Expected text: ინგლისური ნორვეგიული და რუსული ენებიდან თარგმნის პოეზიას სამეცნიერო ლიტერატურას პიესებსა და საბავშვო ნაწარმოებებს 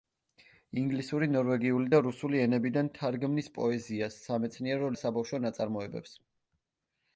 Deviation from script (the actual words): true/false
true